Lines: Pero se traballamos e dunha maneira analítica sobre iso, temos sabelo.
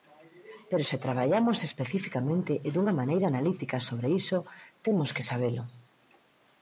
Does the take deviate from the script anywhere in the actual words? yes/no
yes